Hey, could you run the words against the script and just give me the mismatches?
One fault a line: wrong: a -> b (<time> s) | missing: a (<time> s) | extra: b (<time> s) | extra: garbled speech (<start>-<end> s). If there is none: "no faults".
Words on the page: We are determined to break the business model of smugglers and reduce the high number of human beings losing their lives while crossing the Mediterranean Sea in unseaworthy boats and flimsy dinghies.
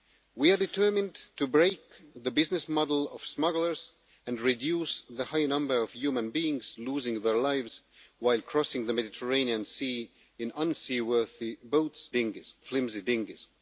wrong: and -> dinghies (12.1 s)